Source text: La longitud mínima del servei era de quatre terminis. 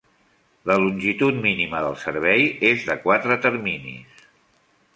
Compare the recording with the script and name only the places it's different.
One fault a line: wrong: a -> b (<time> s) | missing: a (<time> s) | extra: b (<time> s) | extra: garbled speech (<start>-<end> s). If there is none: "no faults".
wrong: era -> és (2.7 s)